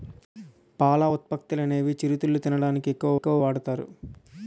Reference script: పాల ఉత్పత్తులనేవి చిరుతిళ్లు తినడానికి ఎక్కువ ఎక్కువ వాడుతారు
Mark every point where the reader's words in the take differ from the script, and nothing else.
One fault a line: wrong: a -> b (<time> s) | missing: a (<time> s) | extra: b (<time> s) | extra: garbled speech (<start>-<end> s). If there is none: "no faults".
no faults